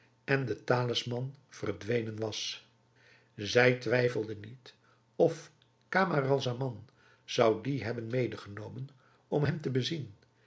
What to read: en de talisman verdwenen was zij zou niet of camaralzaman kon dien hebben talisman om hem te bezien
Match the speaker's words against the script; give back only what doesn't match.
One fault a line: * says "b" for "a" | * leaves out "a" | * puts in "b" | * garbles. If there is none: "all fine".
* says "twijfelde" for "zou"
* says "zou" for "kon"
* says "medegenomen" for "talisman"